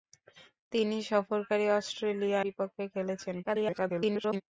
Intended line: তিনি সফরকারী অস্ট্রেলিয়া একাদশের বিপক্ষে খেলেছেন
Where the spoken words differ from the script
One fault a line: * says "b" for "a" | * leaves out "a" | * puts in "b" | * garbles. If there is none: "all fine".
* leaves out "একাদশের"
* garbles